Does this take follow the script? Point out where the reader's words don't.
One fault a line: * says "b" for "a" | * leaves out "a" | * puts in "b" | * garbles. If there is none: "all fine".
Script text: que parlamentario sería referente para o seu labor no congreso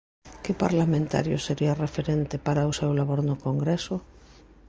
all fine